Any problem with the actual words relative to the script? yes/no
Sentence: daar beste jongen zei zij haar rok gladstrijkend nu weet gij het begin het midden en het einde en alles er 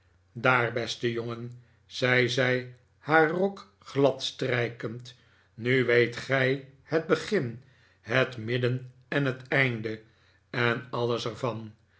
no